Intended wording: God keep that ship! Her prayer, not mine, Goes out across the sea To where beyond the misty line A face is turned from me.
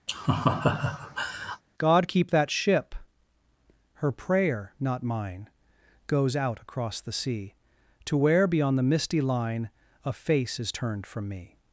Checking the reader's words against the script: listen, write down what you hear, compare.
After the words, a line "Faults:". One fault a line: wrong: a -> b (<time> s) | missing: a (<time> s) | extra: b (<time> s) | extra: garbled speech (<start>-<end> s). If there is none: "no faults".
God keep that ship! Her prayer, not mine, Goes out across the sea To where beyond the misty line A face is turned from me.
Faults:
no faults